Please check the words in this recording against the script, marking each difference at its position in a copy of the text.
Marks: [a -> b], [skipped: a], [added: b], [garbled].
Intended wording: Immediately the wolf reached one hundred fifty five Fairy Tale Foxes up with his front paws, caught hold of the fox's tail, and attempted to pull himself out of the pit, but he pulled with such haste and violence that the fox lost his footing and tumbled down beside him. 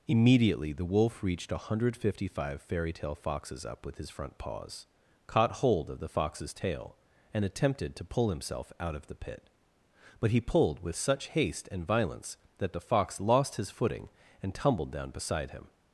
Immediately the wolf reached one hundred fifty five Fairy Tale Foxes up with his front paws, caught hold of the fox's tail, and attempted to pull himself out of the pit, but he pulled with such haste and violence that the fox lost his footing and tumbled down beside him.